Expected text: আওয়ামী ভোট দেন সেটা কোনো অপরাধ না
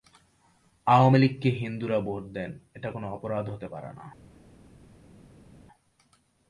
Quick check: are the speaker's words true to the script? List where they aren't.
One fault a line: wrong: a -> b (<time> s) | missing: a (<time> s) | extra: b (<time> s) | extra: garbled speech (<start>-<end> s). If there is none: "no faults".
extra: লীগকে হিন্দুরা (1.2 s)
wrong: সেটা -> এটা (2.7 s)
extra: হতে পারে (3.5 s)